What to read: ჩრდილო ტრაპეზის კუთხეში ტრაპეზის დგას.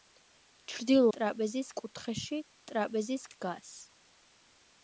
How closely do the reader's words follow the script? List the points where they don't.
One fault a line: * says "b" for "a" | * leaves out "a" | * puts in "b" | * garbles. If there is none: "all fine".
all fine